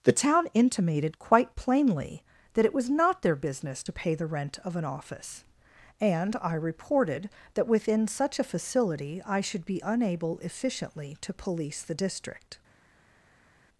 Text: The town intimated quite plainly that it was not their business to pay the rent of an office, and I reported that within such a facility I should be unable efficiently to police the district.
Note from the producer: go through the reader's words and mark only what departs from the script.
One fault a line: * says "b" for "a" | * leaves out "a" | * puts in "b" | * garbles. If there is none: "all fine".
all fine